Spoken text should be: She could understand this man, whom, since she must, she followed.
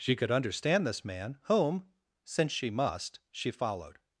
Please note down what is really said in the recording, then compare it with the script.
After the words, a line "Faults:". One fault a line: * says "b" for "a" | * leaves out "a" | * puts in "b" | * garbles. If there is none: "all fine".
She could understand this man, whom, since she must, she followed.
Faults:
all fine